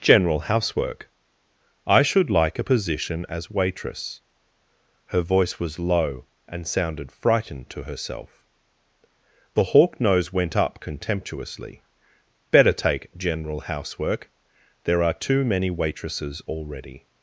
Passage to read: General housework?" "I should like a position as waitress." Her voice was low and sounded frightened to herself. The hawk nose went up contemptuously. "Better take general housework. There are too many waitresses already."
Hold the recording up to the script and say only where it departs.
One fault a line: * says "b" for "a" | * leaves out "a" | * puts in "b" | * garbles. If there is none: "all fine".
all fine